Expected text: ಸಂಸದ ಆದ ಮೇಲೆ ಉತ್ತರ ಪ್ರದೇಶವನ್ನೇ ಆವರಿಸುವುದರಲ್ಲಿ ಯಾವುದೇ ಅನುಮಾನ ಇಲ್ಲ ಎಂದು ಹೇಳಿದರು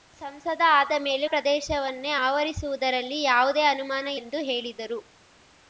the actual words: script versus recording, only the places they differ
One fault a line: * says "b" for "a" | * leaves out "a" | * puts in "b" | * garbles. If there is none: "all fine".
* leaves out "ಉತ್ತರ"
* leaves out "ಇಲ್ಲ"